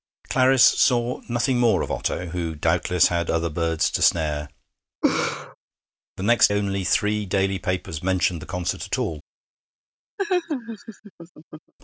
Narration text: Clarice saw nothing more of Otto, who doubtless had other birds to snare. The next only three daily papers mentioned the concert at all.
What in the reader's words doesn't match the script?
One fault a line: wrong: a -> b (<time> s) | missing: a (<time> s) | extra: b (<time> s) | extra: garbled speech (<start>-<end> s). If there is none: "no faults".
no faults